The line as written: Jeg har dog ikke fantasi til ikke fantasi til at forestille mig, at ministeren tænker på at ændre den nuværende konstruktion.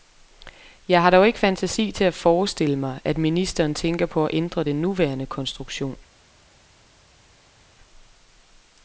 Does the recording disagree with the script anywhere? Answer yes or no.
yes